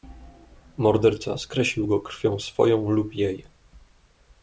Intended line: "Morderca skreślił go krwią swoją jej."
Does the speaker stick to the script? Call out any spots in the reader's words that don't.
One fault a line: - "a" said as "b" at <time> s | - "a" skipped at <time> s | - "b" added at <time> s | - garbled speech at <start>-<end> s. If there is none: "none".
- "lub" added at 2.9 s